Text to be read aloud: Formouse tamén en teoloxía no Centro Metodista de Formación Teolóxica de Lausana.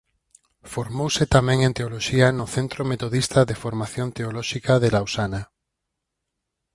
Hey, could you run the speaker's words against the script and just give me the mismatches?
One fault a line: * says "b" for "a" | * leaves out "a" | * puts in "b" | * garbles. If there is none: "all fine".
all fine